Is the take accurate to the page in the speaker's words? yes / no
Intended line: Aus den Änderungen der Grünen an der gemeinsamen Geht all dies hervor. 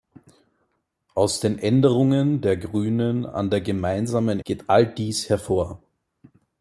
yes